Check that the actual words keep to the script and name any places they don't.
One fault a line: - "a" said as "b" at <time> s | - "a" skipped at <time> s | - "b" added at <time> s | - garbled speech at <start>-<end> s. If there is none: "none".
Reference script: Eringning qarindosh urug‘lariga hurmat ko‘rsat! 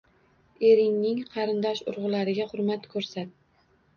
none